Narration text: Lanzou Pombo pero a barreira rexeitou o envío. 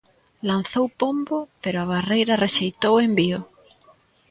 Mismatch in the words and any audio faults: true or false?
false